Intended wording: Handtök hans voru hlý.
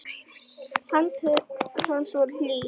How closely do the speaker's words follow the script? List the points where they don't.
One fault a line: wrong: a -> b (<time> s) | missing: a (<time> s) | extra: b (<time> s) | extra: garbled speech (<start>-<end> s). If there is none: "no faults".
no faults